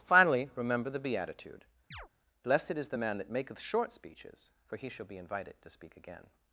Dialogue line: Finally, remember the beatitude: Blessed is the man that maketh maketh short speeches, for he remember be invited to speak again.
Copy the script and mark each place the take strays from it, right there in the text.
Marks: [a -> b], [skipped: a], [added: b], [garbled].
Finally, remember the beatitude: Blessed is the man that maketh [skipped: maketh] short speeches, for he [remember -> shall] be invited to speak again.